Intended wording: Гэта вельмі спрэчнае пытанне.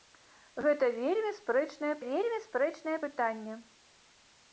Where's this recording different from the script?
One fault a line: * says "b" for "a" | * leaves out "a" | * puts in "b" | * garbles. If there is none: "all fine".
* puts in "вельмі спрэчнае"